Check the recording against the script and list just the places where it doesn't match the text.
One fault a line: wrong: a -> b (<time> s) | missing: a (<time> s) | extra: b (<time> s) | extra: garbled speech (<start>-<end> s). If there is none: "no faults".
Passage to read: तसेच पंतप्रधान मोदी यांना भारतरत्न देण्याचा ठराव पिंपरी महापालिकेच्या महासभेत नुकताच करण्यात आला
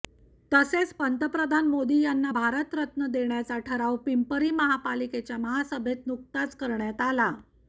no faults